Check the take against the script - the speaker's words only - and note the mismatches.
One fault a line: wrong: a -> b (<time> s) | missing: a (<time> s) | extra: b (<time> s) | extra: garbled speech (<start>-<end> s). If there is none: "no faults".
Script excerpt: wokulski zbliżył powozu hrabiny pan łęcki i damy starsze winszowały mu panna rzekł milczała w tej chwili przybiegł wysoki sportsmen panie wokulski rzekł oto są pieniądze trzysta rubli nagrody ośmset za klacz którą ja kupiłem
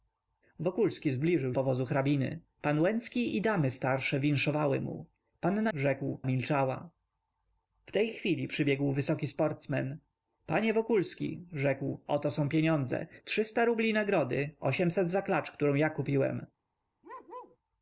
no faults